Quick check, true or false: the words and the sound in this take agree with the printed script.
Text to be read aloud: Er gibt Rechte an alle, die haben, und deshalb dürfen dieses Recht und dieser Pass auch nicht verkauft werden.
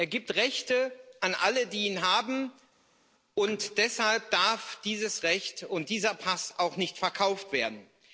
false